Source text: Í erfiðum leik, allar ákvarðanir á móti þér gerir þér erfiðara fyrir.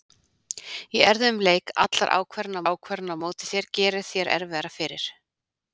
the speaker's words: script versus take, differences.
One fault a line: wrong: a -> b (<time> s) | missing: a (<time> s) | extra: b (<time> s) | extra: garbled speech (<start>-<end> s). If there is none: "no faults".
extra: ákvarðanir (2.7 s)